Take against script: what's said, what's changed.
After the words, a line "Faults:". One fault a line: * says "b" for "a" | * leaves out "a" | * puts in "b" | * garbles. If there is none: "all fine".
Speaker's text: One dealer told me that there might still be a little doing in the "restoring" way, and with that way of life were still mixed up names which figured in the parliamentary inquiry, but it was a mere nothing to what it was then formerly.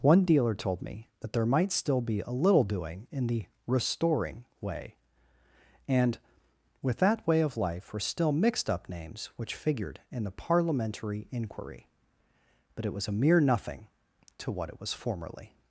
One dealer told me that there might still be a little doing in the "restoring" way, and with that way of life were still mixed up names which figured in the parliamentary inquiry, but it was a mere nothing to what it was formerly.
Faults:
* leaves out "then"